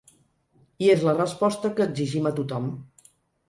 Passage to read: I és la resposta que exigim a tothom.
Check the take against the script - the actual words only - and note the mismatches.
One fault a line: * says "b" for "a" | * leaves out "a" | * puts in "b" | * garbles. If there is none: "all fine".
all fine